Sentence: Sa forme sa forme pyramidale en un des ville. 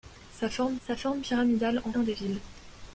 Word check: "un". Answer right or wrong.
right